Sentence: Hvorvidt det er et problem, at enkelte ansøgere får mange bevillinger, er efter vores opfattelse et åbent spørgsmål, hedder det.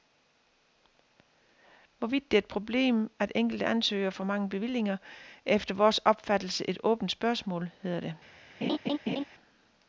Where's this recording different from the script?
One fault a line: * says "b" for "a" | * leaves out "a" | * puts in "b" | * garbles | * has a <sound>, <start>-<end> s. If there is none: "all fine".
* has a laugh, 8.6-9.2 s